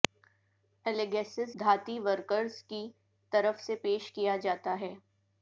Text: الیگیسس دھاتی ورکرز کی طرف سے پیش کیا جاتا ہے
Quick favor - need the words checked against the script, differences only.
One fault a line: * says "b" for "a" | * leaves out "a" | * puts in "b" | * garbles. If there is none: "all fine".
all fine